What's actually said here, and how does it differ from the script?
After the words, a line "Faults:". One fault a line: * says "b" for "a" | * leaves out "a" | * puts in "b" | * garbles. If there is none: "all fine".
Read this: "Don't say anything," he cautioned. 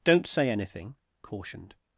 "Don't say anything," cautioned.
Faults:
* leaves out "he"